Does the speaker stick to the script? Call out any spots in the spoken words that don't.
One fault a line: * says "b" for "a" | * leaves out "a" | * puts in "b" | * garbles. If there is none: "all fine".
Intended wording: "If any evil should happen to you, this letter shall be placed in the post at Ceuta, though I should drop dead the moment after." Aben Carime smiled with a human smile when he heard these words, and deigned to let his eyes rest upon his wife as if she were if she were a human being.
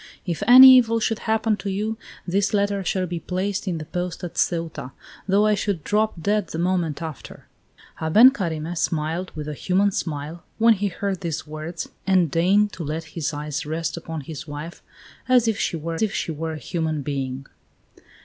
all fine